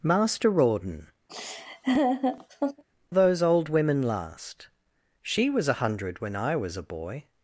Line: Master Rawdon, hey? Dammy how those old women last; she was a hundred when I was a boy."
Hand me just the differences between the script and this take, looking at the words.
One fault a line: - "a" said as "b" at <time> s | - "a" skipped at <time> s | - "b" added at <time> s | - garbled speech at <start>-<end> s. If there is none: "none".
- "hey Dammy how" skipped at 1.1 s